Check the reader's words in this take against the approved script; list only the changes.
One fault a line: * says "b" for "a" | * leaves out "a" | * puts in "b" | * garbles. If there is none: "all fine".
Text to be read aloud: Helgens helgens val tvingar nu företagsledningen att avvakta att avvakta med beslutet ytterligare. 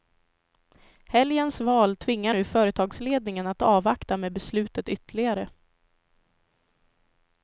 * leaves out "helgens"
* leaves out "att avvakta"